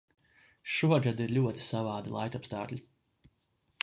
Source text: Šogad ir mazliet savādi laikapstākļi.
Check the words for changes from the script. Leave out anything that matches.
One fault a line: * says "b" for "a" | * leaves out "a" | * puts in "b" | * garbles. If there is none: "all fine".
* says "ļoti" for "mazliet"